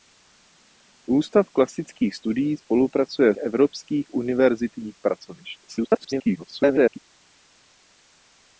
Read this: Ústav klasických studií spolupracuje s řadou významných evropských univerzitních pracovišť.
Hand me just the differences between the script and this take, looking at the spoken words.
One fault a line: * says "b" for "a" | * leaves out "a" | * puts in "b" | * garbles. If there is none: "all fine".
* leaves out "s řadou významných"
* garbles